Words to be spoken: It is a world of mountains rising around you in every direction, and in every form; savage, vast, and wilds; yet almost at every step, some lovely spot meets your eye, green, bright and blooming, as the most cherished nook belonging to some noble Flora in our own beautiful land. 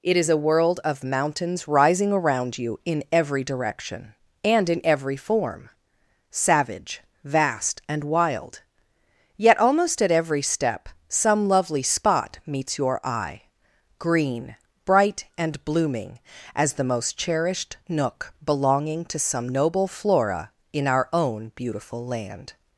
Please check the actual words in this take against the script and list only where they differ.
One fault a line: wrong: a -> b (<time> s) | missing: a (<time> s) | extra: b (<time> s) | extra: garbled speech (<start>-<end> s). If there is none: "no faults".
wrong: wilds -> wild (8.0 s)